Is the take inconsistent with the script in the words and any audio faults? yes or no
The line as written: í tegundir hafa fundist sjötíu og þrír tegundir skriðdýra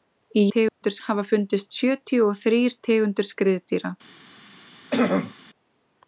yes